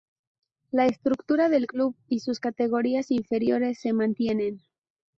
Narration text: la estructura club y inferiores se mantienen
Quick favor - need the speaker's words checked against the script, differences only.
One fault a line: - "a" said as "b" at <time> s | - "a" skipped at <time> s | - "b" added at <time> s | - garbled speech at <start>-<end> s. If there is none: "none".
- "del" added at 1.5 s
- "sus categorías" added at 2.2 s